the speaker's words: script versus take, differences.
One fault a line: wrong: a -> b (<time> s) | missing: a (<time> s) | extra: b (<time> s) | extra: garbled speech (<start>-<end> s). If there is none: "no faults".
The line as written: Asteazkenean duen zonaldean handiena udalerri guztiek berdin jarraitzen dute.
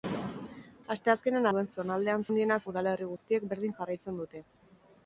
no faults